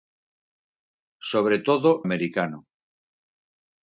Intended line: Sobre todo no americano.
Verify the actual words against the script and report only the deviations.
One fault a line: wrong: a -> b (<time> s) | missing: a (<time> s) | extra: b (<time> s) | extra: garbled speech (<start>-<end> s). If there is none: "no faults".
missing: no (2.0 s)